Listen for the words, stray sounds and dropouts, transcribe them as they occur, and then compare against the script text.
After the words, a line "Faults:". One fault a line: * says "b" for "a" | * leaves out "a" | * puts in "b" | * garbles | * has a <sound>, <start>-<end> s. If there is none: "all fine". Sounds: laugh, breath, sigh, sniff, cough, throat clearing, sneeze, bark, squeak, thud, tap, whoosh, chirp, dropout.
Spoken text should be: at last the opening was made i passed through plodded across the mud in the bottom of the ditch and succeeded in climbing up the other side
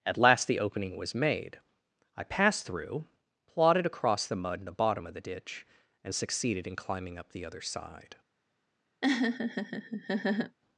at last the opening was made i passed through plodded across the mud in the bottom of the ditch and succeeded in climbing up the other side
Faults:
* has a laugh, 9.0-10.6 s